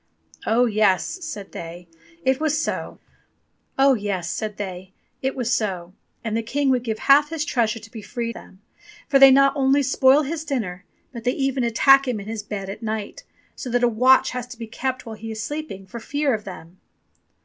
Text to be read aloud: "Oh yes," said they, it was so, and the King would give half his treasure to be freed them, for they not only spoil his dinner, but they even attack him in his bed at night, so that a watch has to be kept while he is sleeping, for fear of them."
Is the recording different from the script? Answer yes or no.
no